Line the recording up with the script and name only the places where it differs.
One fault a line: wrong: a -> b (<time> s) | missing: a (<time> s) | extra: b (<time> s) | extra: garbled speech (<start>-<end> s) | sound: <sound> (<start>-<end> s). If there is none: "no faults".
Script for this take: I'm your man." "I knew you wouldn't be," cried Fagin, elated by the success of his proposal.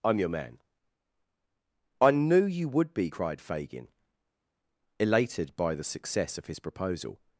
wrong: wouldn't -> would (2.7 s)